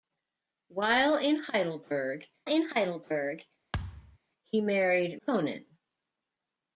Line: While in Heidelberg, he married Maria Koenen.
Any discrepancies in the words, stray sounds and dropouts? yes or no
yes